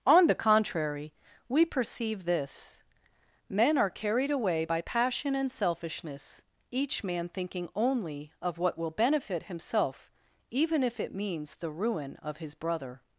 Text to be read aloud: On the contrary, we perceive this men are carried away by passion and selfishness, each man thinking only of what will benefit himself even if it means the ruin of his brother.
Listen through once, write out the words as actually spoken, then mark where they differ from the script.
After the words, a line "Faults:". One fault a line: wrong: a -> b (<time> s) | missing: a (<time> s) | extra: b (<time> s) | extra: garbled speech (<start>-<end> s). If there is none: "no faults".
On the contrary, we perceive this men are carried away by passion and selfishness, each man thinking only of what will benefit himself even if it means the ruin of his brother.
Faults:
no faults